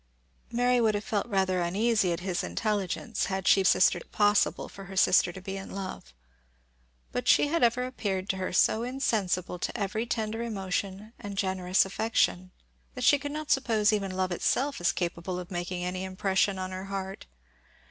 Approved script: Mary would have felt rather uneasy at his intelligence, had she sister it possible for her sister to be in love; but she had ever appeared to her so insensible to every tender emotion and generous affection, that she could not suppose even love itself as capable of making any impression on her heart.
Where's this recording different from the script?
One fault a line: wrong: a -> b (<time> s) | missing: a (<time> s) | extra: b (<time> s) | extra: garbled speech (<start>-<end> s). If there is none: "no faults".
no faults